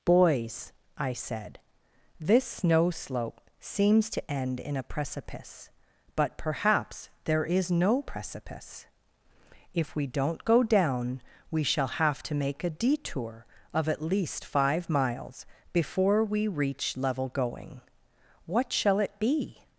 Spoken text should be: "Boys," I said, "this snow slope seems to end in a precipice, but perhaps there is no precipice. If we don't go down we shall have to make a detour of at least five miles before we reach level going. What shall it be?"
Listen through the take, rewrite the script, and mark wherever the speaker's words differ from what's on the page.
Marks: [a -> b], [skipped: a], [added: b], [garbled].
"Boys," I said, "this snow slope seems to end in a precipice, but perhaps there is no precipice. If we don't go down we shall have to make a detour of at least five miles before we reach level going. What shall it be?"